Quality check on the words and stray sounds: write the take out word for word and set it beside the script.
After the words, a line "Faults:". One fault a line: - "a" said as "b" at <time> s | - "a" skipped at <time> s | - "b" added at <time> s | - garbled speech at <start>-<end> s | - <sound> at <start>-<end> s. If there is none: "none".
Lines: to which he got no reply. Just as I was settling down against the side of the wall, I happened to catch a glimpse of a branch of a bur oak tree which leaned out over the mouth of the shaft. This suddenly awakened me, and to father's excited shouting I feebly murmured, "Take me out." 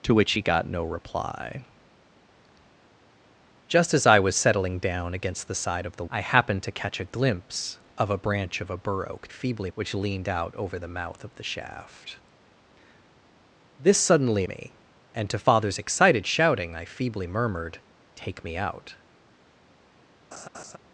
to which he got no reply. Just as I was settling down against the side of the I happened to catch a glimpse of a branch of a bur oak feebly which leaned out over the mouth of the shaft. This suddenly me, and to father's excited shouting I feebly murmured, "Take me out."
Faults:
- "wall" skipped at 6.1 s
- "tree" said as "feebly" at 9.3 s
- "awakened" skipped at 14.4 s
- laugh at 20.3-20.8 s